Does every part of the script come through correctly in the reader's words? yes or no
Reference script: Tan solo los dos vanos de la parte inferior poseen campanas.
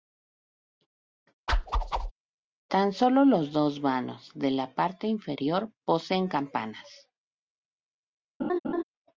yes